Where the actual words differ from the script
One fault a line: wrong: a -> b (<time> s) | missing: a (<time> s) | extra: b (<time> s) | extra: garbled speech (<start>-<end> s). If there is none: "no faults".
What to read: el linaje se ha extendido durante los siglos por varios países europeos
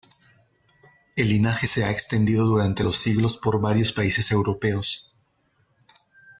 no faults